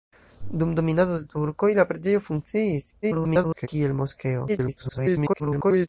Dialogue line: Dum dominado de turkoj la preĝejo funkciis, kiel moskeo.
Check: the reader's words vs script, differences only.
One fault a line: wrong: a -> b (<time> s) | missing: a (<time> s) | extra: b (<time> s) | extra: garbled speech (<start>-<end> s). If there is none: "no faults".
extra: garbled speech (3.0-3.7 s)
extra: garbled speech (4.5-5.9 s)